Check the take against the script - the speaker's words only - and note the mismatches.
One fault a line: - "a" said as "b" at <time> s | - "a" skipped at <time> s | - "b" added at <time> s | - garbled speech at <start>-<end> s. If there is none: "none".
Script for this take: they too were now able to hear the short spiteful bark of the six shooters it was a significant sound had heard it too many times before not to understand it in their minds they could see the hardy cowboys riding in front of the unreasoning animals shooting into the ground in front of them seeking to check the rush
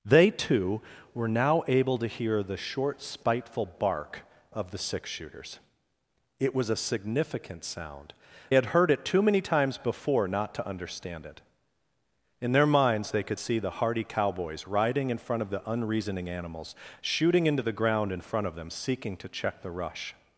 none